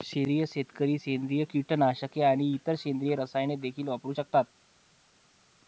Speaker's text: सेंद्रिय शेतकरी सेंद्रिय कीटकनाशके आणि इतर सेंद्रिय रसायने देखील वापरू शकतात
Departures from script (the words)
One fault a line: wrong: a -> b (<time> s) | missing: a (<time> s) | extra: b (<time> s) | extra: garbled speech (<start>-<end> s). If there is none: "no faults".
no faults